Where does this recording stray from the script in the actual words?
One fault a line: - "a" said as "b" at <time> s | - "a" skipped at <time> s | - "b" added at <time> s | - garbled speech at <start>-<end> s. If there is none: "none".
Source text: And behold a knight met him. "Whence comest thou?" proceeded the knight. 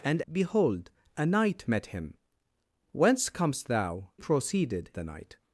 none